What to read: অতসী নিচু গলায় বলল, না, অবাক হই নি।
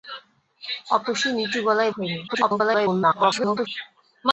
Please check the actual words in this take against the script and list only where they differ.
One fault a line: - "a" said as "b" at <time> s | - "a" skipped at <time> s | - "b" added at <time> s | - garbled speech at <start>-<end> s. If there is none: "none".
- "বলল না অবাক" skipped at 1.9 s
- garbled speech at 2.3-3.7 s